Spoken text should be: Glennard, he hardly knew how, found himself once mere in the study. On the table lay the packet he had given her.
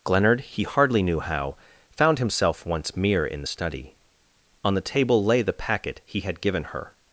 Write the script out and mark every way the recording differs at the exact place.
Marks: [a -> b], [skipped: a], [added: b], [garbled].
Glennard, he hardly knew how, found himself once mere in the study. On the table lay the packet he had given her.